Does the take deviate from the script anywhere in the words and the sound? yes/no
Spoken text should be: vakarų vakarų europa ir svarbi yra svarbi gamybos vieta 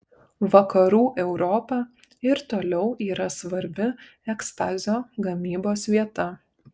yes